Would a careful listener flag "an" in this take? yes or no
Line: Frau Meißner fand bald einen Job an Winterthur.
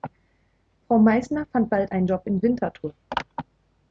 yes